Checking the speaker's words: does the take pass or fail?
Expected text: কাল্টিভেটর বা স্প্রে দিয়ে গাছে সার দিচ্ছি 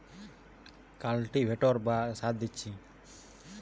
fail